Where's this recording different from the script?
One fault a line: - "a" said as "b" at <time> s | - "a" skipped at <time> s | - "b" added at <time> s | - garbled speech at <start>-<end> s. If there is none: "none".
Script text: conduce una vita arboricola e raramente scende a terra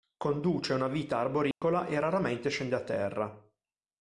none